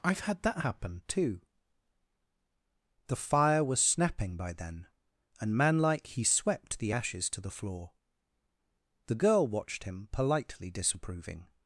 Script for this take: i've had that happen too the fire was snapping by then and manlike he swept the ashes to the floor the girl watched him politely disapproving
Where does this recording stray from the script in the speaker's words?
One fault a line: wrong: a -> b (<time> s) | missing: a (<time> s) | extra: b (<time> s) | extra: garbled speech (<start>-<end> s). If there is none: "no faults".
no faults